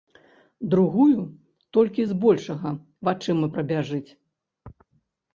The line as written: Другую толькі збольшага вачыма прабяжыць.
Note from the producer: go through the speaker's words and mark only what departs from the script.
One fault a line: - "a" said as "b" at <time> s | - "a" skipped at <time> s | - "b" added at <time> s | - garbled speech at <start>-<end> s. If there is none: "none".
none